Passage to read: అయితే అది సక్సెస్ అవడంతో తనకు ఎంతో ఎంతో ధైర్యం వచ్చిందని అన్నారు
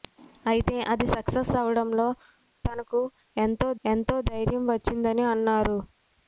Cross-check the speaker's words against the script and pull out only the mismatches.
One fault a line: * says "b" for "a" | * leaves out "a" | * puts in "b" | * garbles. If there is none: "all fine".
all fine